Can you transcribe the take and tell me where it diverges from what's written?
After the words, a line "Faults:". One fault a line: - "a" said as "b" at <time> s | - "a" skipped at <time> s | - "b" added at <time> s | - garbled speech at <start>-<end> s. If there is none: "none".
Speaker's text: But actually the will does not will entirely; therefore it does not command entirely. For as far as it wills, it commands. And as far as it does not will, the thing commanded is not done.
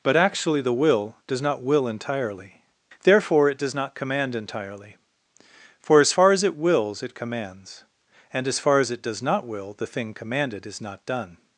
But actually the will does not will entirely; therefore it does not command entirely. For as far as it wills, it commands. And as far as it does not will, the thing commanded is not done.
Faults:
none